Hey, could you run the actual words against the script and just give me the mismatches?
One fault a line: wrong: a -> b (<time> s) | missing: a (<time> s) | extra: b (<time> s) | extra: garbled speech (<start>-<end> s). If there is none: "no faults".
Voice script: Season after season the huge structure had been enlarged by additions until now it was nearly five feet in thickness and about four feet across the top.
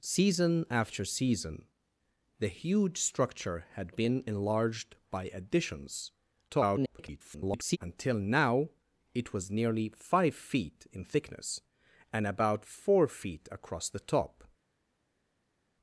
extra: garbled speech (6.5-7.8 s)